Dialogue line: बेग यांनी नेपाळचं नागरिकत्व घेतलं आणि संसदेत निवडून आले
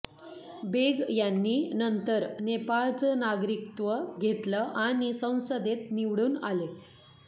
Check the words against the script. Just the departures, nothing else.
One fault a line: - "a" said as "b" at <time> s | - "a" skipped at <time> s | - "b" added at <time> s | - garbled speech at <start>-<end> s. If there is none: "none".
- "नंतर" added at 1.7 s